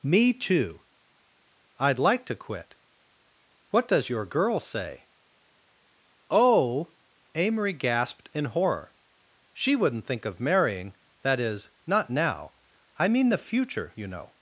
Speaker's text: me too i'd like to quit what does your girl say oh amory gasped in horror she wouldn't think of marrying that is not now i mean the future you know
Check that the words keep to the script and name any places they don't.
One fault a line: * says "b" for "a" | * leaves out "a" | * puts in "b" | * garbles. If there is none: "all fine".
all fine